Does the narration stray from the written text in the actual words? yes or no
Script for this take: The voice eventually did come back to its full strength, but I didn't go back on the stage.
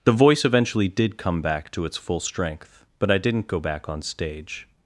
yes